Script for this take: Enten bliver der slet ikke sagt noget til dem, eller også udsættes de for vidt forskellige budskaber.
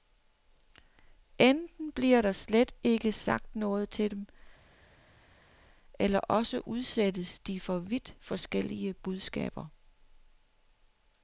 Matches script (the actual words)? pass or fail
pass